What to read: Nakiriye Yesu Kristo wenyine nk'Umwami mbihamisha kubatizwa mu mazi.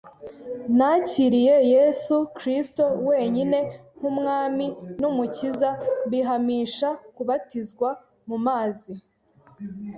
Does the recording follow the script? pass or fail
fail